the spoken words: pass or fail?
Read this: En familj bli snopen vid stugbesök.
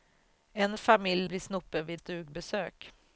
pass